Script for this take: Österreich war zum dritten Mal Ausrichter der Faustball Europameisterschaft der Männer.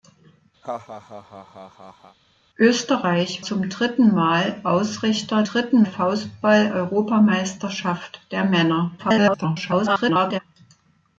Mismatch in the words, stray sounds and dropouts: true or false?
true